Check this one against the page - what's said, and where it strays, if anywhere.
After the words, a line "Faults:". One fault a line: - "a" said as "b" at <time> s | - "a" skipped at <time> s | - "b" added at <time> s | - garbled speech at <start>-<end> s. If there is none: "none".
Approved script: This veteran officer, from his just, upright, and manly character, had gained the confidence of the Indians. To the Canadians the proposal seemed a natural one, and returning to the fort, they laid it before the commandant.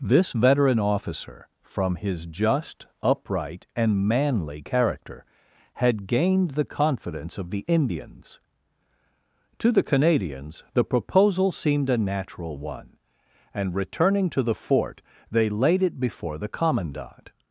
This veteran officer, from his just, upright, and manly character, had gained the confidence of the Indians. To the Canadians the proposal seemed a natural one, and returning to the fort, they laid it before the commandant.
Faults:
none